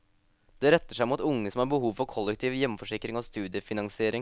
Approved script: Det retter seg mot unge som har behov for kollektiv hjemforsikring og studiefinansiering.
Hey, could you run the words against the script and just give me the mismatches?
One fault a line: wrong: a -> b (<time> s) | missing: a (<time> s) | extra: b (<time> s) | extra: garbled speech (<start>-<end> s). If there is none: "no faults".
no faults